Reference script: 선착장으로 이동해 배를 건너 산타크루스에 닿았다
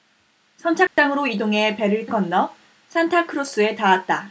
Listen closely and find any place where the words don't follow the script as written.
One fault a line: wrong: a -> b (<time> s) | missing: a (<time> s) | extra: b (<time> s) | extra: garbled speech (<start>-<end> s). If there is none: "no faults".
no faults